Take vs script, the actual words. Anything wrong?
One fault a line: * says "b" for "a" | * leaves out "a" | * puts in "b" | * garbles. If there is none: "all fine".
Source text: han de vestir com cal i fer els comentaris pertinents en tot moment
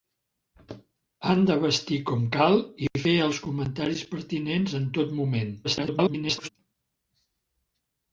* garbles